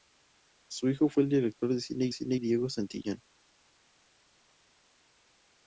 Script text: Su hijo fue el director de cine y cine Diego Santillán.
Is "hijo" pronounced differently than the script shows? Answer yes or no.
no